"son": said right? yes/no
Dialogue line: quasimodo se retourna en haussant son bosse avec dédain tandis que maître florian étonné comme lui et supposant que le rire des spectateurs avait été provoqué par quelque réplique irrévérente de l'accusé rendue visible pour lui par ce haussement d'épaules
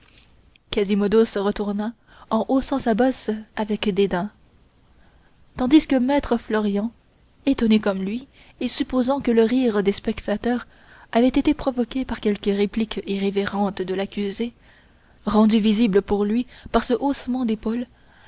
no